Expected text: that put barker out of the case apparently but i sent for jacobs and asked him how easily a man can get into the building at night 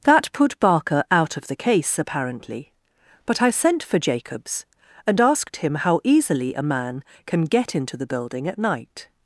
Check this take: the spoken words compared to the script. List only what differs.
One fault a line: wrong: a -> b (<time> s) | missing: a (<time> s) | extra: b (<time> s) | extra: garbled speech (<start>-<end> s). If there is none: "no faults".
no faults